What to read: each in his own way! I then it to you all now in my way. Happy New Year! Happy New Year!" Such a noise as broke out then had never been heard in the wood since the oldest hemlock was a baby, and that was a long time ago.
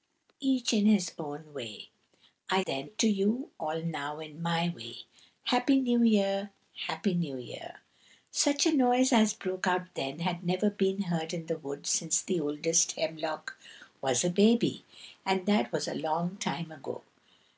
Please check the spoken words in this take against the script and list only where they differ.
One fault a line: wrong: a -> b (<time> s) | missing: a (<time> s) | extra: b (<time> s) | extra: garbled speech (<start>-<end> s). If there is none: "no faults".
no faults